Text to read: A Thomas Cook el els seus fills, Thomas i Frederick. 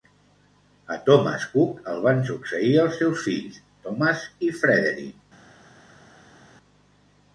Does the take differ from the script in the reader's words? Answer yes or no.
yes